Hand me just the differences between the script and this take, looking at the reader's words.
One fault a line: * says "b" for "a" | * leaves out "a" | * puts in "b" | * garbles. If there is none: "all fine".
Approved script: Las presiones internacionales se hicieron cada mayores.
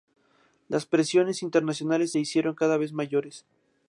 * puts in "vez"